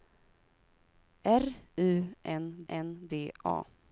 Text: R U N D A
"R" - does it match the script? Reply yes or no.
yes